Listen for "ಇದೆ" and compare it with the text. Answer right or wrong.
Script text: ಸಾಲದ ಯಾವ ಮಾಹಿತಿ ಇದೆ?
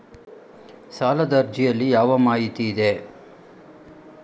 right